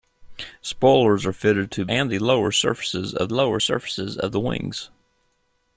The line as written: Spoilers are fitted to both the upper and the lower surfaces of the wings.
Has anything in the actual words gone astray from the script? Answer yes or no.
yes